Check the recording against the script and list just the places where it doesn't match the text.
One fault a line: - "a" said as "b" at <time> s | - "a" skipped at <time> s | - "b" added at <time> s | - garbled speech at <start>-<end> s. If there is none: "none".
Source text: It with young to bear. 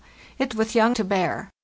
none